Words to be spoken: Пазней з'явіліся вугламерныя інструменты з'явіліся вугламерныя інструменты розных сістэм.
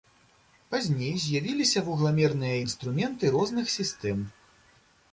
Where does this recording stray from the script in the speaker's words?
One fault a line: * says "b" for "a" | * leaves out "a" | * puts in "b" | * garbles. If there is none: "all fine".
* leaves out "з'явіліся вугламерныя інструменты"